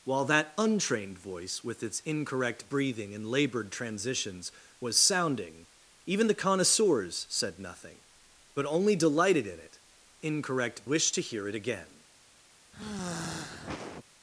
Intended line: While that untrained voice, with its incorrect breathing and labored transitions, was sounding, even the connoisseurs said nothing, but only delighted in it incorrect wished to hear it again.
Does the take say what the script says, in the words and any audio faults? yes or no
no